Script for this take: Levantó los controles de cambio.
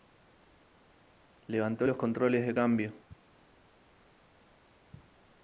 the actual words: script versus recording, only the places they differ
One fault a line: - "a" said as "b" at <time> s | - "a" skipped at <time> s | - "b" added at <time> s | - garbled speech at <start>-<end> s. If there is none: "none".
none